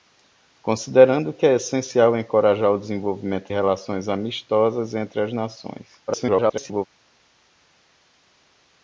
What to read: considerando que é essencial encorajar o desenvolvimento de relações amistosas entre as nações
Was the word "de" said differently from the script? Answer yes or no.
yes